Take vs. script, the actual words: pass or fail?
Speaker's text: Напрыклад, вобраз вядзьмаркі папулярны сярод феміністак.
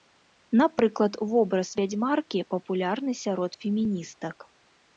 pass